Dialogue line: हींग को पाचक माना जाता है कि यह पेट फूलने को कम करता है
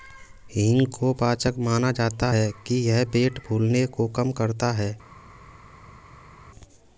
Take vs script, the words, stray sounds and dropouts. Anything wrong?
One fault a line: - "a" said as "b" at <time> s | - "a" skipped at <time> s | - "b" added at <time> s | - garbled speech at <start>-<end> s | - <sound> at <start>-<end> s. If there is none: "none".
none